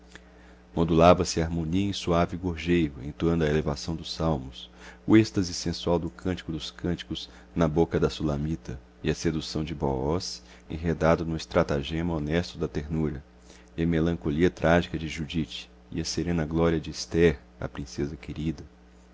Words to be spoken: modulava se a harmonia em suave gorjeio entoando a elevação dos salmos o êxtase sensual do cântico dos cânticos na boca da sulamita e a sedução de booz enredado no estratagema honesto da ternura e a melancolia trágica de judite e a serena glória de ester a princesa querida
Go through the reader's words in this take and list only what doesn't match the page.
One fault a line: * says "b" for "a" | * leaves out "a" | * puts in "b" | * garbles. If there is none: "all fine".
all fine